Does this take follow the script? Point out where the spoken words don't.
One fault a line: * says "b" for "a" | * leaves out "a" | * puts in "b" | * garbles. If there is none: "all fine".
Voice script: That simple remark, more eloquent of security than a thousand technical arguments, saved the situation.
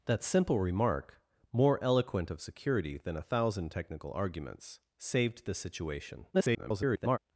* garbles